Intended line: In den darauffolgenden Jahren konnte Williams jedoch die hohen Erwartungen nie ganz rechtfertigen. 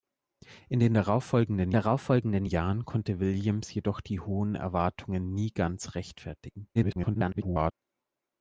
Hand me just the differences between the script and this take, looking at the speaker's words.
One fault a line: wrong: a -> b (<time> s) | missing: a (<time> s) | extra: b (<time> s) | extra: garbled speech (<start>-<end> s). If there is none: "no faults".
extra: darauffolgenden (1.7 s)
extra: garbled speech (6.7-7.7 s)